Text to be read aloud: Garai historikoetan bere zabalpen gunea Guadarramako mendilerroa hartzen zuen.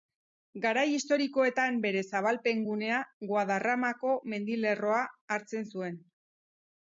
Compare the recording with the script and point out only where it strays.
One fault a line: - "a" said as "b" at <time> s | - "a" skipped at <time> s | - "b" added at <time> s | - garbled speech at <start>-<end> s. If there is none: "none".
none